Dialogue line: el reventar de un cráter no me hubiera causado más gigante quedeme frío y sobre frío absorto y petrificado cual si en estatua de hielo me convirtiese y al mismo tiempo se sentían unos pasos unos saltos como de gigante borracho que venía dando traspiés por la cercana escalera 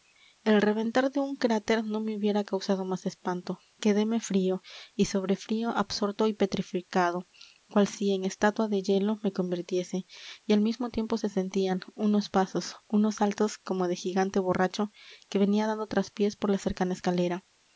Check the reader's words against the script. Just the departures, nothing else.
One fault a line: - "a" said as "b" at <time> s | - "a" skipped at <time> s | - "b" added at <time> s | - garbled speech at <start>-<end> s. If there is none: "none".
- "gigante" said as "espanto" at 3.0 s